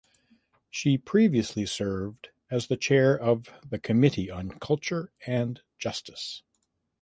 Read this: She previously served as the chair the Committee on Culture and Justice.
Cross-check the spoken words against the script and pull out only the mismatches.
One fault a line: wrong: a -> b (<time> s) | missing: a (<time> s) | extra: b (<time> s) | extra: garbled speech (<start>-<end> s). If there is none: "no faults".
extra: of (3.1 s)